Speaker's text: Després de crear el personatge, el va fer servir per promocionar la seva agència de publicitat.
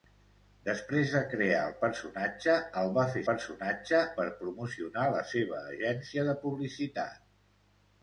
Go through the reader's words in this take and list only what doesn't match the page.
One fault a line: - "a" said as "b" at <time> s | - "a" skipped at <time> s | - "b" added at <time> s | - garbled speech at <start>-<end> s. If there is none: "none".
- "servir" said as "personatge" at 3.3 s